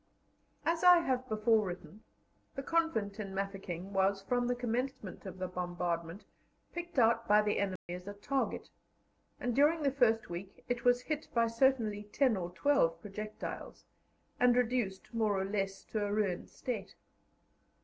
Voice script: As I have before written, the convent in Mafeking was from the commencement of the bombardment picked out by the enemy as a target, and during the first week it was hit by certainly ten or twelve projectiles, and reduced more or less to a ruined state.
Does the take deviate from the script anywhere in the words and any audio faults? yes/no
yes